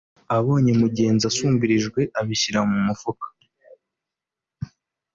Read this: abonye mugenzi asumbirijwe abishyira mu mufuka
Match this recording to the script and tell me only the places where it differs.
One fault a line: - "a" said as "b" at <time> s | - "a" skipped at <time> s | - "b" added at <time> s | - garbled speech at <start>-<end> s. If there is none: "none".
none